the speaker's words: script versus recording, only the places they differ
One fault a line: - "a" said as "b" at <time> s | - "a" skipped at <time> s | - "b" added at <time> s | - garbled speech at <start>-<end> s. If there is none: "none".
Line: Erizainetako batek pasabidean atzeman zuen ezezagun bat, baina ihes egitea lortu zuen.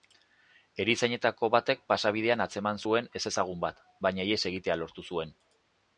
none